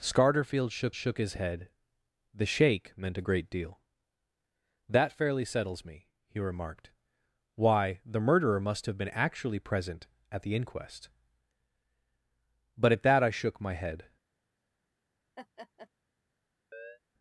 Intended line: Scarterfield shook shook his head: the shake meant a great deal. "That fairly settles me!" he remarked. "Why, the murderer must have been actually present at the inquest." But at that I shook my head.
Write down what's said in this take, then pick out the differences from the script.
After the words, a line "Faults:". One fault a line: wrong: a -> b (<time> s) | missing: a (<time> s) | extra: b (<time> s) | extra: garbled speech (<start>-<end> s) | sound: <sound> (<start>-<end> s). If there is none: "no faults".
Scarterfield shook shook his head: the shake meant a great deal. "That fairly settles me!" he remarked. "Why, the murderer must have been actually present at the inquest." But at that I shook my head.
Faults:
sound: laugh (15.4-15.9 s)
sound: chirp (16.7-17.0 s)